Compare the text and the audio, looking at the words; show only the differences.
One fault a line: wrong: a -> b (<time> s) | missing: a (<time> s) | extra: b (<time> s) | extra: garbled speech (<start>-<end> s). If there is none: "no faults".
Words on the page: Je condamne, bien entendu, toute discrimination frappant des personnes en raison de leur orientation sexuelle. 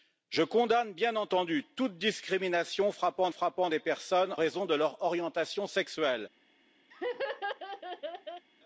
extra: frappant (3.3 s)
missing: en (4.4 s)